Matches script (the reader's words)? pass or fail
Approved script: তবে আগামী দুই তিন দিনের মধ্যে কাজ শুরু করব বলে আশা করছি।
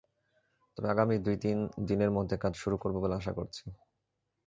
pass